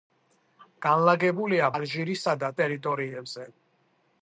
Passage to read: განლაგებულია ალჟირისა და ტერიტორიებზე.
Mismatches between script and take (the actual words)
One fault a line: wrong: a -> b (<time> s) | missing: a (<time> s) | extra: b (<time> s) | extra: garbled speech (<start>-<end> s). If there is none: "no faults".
no faults